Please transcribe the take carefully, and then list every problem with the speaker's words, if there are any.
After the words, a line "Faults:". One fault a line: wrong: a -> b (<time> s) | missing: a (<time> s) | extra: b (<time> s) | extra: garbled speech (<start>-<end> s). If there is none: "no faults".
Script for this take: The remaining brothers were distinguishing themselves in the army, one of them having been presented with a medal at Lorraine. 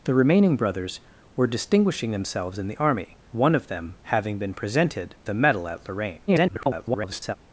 The remaining brothers were distinguishing themselves in the army, one of them having been presented a medal at Lorraine. [garbled]
Faults:
missing: with (5.2 s)
extra: garbled speech (6.3-7.4 s)